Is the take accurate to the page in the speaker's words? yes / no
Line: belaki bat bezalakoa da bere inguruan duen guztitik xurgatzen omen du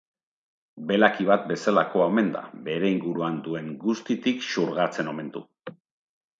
no